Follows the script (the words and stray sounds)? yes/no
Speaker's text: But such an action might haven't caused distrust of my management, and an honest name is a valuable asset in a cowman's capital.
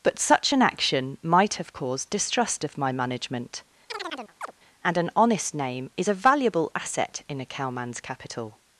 no